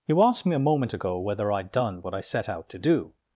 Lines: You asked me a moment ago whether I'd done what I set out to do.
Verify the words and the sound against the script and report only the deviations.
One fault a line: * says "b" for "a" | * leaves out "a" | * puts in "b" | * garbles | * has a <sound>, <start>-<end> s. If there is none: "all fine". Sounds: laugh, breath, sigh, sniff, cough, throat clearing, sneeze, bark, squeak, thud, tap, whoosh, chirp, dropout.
all fine